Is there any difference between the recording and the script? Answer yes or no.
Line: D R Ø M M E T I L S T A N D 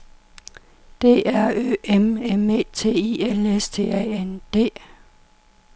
no